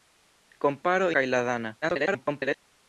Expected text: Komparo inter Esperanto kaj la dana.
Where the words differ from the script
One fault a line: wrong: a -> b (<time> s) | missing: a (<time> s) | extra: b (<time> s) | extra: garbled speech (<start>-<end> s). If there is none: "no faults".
missing: inter Esperanto (1.1 s)
extra: garbled speech (1.8-2.6 s)